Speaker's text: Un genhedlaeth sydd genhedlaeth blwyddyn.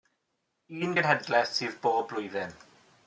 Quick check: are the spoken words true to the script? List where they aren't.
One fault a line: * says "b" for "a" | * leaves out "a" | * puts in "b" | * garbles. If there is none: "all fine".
* says "bob" for "genhedlaeth"